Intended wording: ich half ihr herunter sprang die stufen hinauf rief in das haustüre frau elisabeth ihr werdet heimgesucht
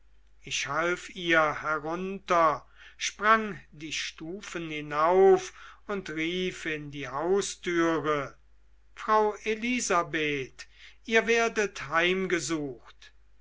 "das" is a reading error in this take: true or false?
true